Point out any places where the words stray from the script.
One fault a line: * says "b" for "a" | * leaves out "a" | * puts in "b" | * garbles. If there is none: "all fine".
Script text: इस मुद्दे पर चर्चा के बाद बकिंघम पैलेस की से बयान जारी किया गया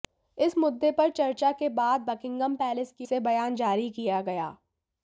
all fine